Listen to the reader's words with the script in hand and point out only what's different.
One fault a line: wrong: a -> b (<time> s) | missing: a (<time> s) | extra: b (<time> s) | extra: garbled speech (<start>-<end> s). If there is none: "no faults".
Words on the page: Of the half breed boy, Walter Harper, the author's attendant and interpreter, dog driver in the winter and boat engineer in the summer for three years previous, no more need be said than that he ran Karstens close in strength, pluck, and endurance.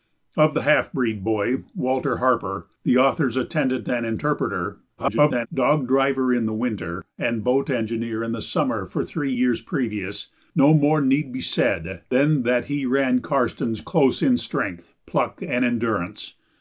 extra: garbled speech (5.0-5.5 s)